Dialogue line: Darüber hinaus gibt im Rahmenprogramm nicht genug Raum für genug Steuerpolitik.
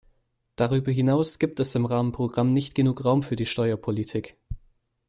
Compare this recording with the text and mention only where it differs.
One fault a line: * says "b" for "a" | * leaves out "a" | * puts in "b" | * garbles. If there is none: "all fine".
* puts in "es"
* says "die" for "genug"